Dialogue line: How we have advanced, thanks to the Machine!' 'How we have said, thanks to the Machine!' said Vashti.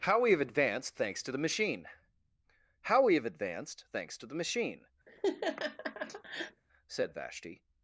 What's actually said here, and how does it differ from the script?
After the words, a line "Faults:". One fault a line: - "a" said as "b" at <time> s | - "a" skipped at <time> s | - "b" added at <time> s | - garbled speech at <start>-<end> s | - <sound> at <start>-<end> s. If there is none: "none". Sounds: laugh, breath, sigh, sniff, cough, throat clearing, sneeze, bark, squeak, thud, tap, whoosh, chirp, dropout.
How we have advanced, thanks to the Machine!' 'How we have advanced, thanks to the Machine!' said Vashti.
Faults:
- "said" said as "advanced" at 3.2 s
- laugh at 5.1-6.6 s